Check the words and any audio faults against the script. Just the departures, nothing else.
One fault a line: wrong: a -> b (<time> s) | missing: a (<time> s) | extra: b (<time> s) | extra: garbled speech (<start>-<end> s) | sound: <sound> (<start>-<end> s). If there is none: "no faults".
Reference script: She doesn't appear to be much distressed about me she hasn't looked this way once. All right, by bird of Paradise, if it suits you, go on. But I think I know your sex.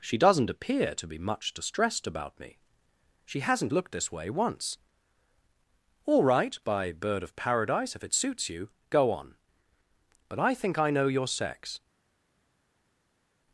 no faults